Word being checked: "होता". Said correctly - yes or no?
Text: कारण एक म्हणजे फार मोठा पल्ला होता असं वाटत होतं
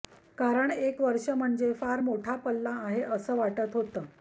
no